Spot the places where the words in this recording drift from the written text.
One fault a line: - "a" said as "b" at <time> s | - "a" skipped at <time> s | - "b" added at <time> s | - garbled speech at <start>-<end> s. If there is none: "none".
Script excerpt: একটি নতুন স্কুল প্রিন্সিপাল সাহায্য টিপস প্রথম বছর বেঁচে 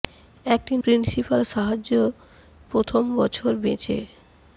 - "নতুন স্কুল" skipped at 0.7 s
- "টিপস" skipped at 1.9 s